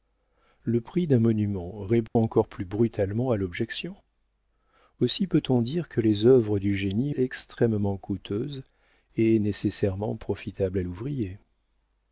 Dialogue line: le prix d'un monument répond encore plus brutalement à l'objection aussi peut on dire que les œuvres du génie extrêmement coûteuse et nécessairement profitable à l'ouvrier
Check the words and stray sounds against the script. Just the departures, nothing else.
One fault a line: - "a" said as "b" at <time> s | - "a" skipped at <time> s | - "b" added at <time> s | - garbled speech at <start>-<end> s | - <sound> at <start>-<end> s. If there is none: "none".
- dropout at 2.1-2.2 s